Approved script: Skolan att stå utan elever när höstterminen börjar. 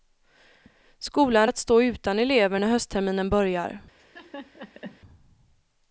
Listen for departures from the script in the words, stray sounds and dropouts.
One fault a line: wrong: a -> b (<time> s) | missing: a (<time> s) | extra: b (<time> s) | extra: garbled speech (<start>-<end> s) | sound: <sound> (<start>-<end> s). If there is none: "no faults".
sound: laugh (4.0-5.0 s)